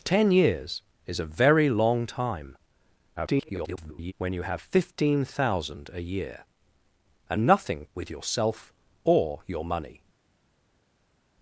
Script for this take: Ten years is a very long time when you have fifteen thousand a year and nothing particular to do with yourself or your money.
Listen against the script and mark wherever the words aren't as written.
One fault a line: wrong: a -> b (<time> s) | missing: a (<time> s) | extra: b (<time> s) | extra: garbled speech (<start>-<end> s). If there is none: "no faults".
extra: garbled speech (3.2-4.1 s)
missing: particular to do (7.9 s)